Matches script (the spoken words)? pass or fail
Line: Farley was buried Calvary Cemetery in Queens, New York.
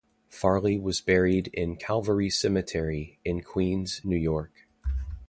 fail